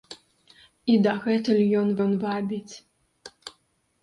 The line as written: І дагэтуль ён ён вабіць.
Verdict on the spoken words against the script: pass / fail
pass